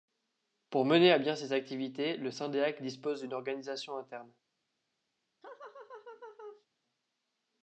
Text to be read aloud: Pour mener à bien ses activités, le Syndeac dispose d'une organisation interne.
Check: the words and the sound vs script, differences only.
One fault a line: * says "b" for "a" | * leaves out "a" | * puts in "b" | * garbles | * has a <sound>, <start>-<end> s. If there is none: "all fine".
* has a laugh, 5.4-6.7 s